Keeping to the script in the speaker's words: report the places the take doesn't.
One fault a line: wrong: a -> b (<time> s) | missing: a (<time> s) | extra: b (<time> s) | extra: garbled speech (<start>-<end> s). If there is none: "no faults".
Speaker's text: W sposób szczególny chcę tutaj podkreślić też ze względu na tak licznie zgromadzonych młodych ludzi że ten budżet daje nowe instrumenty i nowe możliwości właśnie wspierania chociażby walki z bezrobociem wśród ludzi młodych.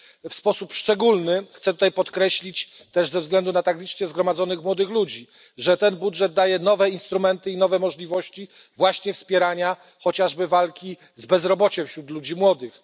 no faults